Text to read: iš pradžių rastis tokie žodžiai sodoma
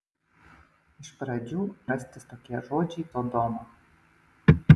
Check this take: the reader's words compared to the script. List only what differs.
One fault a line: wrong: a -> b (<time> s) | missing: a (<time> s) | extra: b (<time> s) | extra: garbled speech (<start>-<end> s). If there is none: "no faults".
no faults